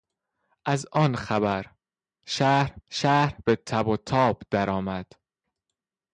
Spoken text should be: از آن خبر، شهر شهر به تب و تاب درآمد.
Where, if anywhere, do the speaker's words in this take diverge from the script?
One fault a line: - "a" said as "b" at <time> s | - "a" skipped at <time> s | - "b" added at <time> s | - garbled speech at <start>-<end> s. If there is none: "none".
none